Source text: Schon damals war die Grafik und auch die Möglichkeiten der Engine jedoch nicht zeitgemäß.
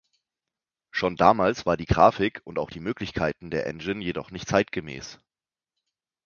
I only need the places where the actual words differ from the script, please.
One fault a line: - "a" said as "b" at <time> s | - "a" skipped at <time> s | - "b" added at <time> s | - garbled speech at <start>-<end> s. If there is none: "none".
none